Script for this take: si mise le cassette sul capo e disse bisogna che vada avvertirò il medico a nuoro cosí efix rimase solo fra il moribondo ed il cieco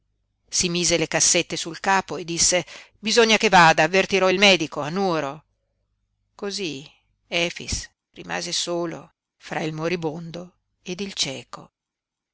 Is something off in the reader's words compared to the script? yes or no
no